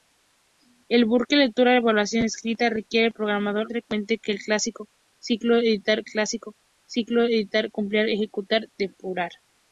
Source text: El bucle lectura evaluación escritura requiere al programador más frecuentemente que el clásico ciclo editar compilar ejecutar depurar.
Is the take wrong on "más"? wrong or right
wrong